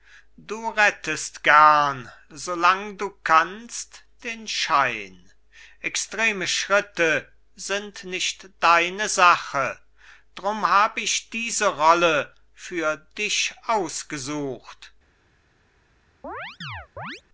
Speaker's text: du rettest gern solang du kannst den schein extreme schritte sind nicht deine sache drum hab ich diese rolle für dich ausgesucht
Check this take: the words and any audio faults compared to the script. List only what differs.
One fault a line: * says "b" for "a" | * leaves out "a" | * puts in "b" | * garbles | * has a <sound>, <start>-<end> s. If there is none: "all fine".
* has a chirp, 16.2-17.2 s